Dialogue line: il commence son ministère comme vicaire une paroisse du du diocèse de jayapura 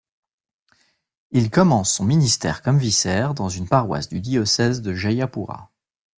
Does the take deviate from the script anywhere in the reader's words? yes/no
yes